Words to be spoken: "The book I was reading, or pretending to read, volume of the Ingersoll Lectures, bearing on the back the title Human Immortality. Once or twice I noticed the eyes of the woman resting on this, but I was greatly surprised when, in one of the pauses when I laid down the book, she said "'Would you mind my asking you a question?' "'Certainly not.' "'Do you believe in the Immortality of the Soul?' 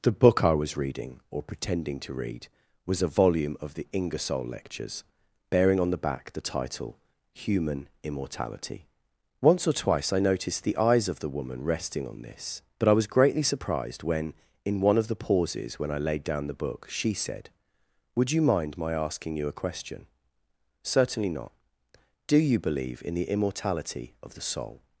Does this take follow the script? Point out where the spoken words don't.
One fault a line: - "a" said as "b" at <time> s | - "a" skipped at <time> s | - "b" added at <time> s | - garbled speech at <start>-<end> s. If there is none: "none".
- "was a" added at 2.9 s